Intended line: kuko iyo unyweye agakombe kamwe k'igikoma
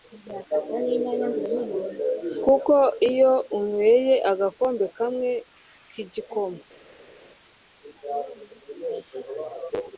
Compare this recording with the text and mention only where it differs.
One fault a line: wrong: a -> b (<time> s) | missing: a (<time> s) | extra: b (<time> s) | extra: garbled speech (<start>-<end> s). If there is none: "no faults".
no faults